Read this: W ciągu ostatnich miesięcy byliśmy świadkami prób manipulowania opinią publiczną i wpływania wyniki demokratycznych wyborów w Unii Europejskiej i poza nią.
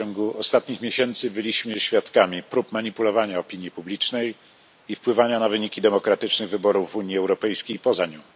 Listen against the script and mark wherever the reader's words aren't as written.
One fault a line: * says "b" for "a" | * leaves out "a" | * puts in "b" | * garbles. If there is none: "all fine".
* puts in "na"